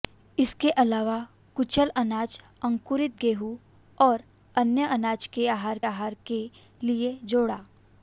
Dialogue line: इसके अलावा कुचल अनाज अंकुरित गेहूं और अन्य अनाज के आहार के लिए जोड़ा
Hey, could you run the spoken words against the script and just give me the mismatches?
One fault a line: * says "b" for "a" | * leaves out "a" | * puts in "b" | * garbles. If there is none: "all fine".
* puts in "आहार"